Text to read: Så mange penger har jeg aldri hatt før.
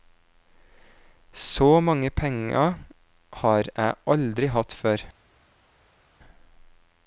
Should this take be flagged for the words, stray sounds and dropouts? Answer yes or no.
no